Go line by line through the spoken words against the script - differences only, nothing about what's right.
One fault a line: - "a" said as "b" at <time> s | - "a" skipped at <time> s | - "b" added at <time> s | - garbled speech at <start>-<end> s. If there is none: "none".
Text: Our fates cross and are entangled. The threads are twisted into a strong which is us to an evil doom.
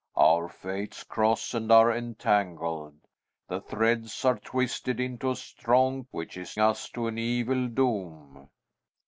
none